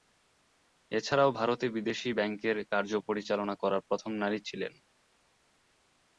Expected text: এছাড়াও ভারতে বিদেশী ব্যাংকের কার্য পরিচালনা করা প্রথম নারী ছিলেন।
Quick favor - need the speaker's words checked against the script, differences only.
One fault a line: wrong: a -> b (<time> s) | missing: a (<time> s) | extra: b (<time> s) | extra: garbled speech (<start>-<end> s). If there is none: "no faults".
no faults